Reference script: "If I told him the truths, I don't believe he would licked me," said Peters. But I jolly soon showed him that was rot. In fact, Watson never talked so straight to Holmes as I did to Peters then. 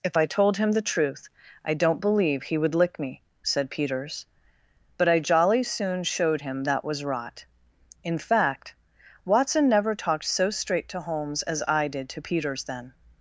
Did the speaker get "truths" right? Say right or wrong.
wrong